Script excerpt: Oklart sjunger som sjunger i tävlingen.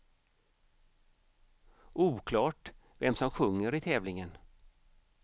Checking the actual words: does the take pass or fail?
fail